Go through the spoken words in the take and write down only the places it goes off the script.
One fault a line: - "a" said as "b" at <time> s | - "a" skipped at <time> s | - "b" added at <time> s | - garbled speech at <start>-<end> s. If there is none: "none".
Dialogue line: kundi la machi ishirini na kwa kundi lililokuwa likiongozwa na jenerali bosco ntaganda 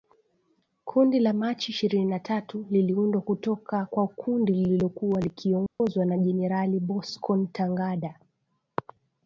- "tatu liliundwa kutoka" added at 2.2 s